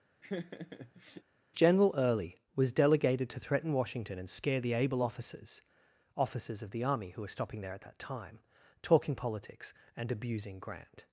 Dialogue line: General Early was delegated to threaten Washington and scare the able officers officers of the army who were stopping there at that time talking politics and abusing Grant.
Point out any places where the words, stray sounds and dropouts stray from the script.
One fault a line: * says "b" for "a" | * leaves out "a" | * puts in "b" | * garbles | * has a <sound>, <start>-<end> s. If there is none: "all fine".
* has a laugh, 0.2-1.2 s